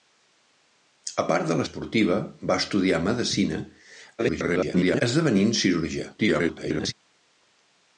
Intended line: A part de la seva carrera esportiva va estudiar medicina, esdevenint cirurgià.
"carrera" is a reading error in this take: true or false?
true